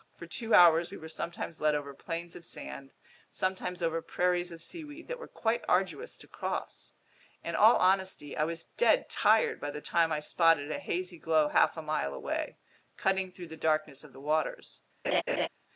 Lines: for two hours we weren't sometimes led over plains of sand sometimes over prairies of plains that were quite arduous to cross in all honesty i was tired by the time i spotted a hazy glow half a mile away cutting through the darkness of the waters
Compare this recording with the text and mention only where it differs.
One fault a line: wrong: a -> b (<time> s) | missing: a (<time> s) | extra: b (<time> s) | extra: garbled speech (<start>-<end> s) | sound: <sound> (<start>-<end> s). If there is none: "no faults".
wrong: weren't -> were (1.0 s)
wrong: plains -> seaweed (4.6 s)
extra: dead (8.6 s)
sound: laugh (15.0-15.5 s)